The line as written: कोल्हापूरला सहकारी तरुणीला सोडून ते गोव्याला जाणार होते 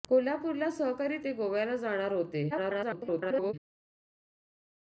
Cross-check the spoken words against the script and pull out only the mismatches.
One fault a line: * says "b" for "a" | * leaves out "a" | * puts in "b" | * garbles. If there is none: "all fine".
* leaves out "तरुणीला सोडून"
* garbles